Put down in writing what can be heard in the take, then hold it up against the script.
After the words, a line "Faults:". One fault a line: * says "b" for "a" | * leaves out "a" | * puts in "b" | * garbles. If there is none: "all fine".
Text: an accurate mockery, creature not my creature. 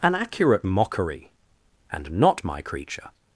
an accurate mockery, and not my creature.
Faults:
* says "and" for "creature"